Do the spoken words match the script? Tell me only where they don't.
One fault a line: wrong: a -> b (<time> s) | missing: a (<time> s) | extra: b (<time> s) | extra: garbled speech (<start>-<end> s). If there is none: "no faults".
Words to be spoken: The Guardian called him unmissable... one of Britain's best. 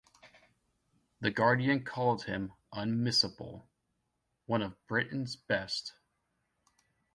no faults